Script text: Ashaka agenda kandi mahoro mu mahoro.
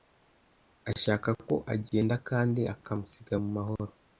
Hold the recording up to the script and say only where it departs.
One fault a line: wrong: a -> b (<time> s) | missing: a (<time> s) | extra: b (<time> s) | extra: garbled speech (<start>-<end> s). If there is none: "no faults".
extra: ko (1.4 s)
wrong: mahoro -> akamusiga (2.7 s)